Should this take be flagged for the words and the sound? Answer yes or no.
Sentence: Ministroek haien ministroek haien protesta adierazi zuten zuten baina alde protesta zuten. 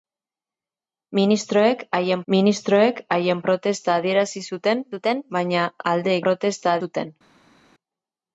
no